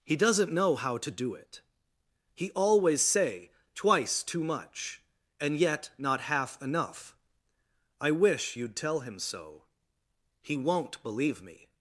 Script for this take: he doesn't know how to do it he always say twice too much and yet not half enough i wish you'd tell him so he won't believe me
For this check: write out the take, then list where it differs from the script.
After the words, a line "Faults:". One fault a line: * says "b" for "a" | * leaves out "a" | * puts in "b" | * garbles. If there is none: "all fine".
he doesn't know how to do it he always say twice too much and yet not half enough i wish you'd tell him so he won't believe me
Faults:
all fine